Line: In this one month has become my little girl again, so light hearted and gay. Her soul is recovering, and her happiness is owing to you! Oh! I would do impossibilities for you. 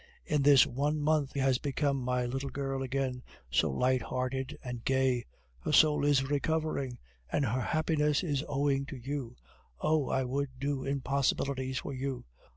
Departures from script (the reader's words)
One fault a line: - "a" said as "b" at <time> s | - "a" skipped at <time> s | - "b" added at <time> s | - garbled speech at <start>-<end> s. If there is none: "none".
none